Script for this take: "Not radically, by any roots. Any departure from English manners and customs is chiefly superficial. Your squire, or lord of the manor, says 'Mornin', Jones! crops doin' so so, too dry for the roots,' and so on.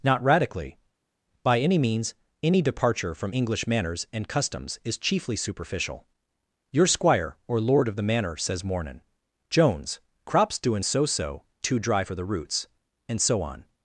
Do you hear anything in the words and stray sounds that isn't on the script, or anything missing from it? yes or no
yes